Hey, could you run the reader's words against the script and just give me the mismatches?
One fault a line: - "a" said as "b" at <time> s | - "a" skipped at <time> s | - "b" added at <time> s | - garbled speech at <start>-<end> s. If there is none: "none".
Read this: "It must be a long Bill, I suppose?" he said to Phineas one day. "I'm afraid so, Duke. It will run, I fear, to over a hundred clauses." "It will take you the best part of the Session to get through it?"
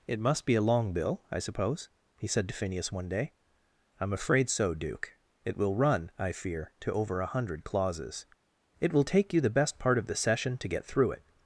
none